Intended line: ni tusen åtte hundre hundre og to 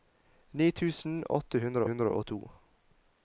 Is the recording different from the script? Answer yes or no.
no